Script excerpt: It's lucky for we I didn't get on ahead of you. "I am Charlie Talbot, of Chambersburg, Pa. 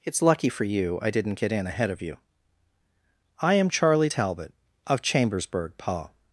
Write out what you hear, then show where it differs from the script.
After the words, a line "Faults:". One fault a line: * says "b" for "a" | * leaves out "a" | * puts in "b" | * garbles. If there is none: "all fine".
It's lucky for you I didn't get in ahead of you. "I am Charlie Talbot, of Chambersburg, Pa.
Faults:
* says "you" for "we"
* says "in" for "on"